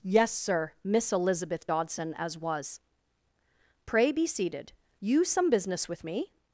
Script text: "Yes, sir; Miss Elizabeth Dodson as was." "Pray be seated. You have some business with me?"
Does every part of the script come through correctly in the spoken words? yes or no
no